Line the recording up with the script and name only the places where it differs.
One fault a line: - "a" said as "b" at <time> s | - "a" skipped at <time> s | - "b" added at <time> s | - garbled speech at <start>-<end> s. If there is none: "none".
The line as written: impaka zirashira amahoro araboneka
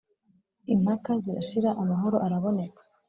none